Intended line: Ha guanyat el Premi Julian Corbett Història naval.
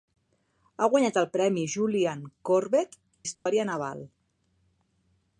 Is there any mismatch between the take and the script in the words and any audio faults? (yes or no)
yes